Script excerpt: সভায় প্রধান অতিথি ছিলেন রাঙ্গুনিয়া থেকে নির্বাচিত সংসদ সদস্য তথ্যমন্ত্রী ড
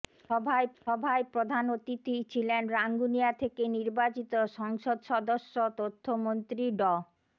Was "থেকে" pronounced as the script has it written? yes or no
yes